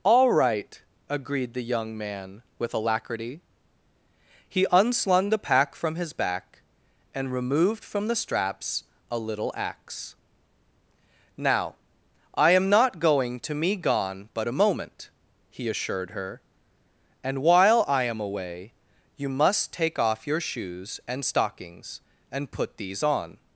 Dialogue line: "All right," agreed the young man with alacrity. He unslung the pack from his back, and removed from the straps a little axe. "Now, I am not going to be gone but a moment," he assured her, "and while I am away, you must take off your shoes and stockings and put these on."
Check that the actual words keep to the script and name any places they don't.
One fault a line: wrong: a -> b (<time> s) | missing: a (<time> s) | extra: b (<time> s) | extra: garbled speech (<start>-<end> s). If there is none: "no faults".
wrong: be -> me (13.5 s)